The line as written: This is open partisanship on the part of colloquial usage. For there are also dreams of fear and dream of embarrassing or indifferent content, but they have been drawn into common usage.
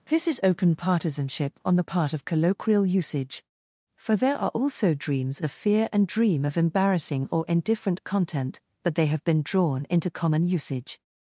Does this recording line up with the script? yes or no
yes